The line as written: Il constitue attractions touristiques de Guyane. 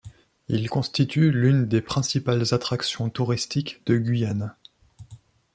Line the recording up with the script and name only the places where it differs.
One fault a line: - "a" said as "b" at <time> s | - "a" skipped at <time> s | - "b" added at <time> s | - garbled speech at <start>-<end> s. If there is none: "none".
- "l'une des principales" added at 1.3 s